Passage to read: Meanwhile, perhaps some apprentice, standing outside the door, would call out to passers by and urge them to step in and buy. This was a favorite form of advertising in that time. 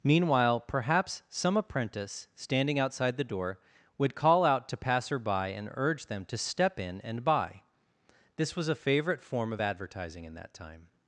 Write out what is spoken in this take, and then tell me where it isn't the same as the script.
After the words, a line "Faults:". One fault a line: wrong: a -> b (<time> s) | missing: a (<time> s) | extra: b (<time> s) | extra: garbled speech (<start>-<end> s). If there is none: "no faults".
Meanwhile, perhaps some apprentice, standing outside the door, would call out to passer by and urge them to step in and buy. This was a favorite form of advertising in that time.
Faults:
wrong: passers -> passer (4.8 s)